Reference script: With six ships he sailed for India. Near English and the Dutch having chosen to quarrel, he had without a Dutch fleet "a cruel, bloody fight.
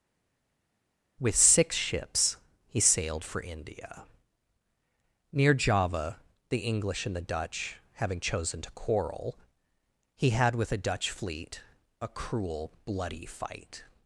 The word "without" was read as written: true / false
false